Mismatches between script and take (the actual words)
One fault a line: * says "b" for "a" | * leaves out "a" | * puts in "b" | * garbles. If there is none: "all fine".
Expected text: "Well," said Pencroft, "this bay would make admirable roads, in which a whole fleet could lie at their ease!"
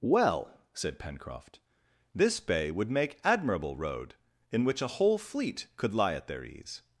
* says "road" for "roads"